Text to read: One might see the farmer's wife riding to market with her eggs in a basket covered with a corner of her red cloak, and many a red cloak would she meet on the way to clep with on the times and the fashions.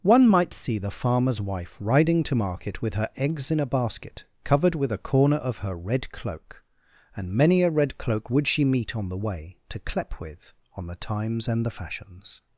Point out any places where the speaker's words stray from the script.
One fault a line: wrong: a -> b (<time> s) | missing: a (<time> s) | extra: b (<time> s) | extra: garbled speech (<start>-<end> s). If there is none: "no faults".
no faults